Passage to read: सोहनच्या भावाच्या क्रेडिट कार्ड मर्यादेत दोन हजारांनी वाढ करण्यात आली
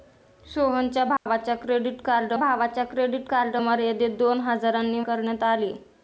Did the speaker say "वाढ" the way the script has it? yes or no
no